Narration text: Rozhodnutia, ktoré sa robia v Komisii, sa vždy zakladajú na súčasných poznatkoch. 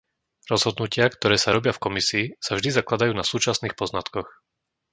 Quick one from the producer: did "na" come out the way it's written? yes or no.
yes